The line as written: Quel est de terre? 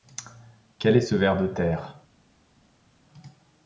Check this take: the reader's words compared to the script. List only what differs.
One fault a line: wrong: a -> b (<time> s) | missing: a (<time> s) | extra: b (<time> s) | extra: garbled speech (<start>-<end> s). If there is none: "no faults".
extra: ce ver (1.0 s)